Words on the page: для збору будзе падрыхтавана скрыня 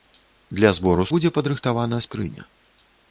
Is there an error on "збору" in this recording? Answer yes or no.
no